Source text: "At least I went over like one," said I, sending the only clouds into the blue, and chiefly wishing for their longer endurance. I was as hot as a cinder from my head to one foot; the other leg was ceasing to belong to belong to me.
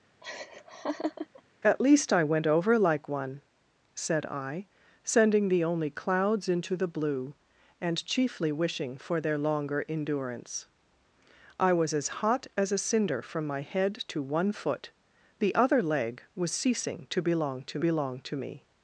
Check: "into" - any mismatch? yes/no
no